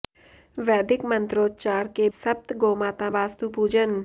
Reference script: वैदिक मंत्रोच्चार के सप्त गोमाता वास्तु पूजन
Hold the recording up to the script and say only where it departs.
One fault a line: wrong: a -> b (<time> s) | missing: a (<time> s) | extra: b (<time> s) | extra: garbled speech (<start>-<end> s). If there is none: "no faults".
no faults